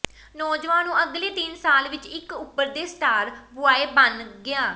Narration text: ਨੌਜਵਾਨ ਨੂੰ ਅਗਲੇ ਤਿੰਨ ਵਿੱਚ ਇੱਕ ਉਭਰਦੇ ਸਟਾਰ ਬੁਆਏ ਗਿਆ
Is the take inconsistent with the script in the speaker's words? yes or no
yes